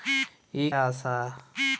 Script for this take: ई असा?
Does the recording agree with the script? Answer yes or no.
yes